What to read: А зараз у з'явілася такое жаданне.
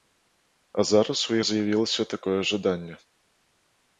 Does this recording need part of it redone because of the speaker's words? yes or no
no